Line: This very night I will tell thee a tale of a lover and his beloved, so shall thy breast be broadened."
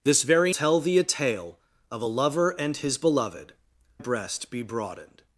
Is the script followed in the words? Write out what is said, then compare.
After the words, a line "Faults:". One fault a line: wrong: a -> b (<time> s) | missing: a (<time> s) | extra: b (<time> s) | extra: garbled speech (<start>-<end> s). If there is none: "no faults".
This very tell thee a tale of a lover and his beloved, breast be broadened."
Faults:
missing: night I will (0.5 s)
missing: so shall thy (3.5 s)